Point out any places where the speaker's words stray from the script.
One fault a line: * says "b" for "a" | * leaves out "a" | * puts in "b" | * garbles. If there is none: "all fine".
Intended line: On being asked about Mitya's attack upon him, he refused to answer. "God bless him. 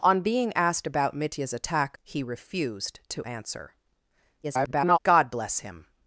* leaves out "upon him"
* garbles